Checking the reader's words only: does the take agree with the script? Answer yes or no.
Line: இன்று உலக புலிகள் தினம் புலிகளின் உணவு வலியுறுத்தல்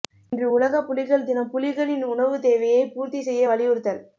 no